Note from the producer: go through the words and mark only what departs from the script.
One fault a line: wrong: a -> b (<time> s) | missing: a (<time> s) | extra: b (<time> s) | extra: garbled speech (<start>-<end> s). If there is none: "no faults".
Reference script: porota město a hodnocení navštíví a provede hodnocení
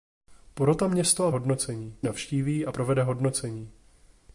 no faults